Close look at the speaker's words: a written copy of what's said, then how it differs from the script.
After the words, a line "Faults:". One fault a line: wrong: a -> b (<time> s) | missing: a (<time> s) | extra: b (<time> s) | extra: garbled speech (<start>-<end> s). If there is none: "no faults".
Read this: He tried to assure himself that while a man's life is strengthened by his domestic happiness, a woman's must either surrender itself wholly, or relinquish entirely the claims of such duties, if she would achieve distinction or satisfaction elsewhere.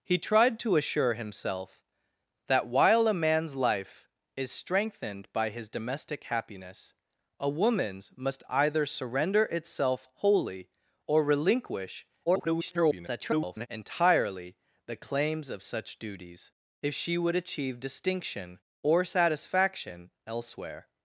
He tried to assure himself that while a man's life is strengthened by his domestic happiness, a woman's must either surrender itself wholly, or relinquish [garbled] entirely the claims of such duties, if she would achieve distinction or satisfaction elsewhere.
Faults:
extra: garbled speech (12.3-13.7 s)